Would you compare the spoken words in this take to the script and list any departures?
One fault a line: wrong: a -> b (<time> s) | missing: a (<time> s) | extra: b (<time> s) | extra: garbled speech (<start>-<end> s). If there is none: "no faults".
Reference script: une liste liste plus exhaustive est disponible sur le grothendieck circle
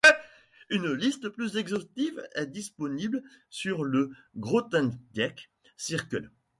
missing: liste (1.3 s)